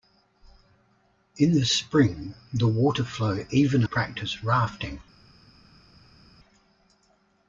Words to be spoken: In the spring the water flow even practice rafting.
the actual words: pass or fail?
pass